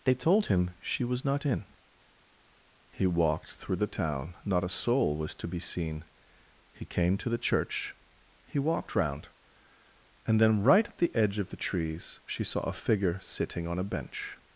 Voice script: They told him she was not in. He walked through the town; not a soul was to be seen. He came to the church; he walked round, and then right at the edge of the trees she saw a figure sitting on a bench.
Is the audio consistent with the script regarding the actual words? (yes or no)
yes